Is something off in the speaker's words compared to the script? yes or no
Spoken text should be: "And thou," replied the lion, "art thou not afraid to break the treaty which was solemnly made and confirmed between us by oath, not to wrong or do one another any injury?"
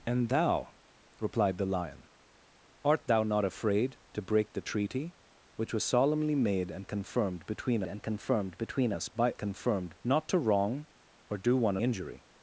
yes